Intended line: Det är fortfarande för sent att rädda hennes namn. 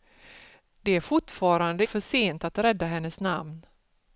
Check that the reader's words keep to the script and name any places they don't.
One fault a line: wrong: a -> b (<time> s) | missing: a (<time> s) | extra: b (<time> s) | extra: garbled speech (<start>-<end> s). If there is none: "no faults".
no faults